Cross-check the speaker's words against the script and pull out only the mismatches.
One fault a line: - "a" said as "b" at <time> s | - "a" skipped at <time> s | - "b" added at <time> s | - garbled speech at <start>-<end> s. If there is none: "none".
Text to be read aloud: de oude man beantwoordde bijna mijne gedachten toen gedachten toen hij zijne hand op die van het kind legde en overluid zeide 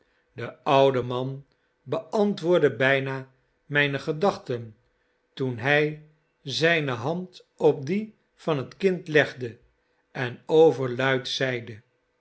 - "gedachten toen" skipped at 5.6 s